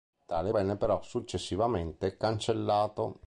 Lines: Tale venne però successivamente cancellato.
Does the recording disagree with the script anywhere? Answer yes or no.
no